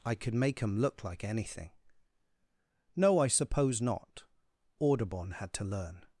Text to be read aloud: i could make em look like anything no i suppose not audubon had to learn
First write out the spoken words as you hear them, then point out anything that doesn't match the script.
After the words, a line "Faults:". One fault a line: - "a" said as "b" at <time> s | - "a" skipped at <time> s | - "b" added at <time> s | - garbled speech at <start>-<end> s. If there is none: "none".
i could make em look like anything no i suppose not audubon had to learn
Faults:
none